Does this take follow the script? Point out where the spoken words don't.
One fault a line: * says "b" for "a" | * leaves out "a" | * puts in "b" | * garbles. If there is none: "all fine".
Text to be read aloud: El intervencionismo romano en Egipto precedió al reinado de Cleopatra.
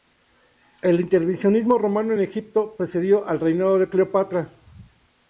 all fine